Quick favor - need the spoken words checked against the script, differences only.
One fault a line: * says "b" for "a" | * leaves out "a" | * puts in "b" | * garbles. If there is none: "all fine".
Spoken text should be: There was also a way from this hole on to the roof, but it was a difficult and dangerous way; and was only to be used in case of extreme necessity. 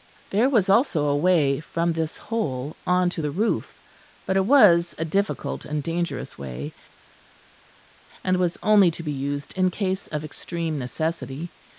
all fine